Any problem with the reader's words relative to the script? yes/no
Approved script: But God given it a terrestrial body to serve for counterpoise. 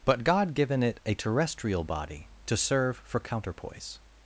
no